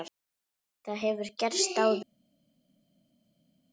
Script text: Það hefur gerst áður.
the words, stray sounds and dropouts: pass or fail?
pass